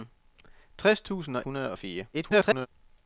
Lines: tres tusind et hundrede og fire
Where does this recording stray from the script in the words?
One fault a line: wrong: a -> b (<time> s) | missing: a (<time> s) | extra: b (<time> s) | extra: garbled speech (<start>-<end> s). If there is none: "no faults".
missing: et (1.4 s)
extra: garbled speech (2.1-2.7 s)